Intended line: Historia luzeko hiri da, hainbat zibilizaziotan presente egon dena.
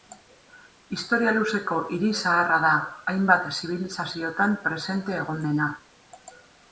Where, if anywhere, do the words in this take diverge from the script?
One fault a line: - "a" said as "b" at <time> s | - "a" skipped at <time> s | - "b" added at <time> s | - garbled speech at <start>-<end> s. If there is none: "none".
- "zaharra" added at 2.2 s